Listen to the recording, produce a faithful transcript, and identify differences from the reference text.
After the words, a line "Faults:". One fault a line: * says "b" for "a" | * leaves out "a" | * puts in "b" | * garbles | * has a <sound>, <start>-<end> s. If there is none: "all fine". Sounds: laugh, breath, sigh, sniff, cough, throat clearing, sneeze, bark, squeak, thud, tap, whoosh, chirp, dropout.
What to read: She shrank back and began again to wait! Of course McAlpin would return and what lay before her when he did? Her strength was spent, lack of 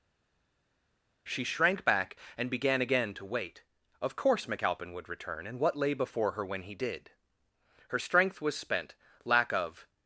She shrank back and began again to wait! Of course McAlpin would return and what lay before her when he did? Her strength was spent, lack of
Faults:
all fine